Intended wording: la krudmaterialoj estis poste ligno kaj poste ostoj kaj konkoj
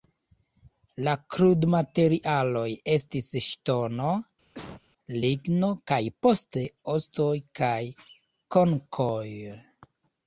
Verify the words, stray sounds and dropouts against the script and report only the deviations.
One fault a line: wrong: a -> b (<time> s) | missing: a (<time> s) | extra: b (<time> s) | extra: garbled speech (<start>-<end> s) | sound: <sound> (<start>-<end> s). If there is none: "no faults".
wrong: poste -> ŝtono (3.5 s)
sound: cough (4.5-4.8 s)